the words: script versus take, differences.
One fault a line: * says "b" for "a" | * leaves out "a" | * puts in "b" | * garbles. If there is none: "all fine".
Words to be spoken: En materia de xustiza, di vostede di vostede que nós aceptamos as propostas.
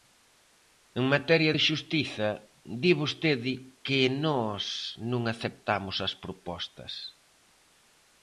* leaves out "di vostede"
* puts in "non"